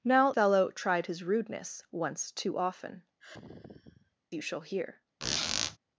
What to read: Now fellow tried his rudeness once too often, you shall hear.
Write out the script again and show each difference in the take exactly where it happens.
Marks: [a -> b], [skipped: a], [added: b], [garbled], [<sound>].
Now fellow tried his rudeness once too often, [sigh] you shall hear. [squeak]